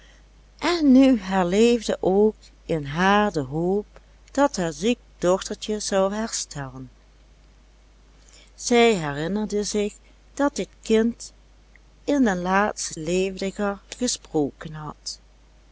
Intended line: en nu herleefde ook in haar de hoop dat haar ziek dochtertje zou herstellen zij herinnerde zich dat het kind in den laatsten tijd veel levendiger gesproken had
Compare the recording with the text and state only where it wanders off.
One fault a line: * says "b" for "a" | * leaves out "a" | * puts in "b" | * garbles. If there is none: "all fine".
* leaves out "tijd veel"